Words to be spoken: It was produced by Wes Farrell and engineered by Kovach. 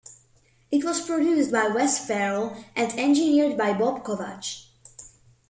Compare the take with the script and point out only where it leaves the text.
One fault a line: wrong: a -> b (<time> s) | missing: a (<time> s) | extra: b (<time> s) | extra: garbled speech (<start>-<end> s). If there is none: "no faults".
extra: Bob (3.7 s)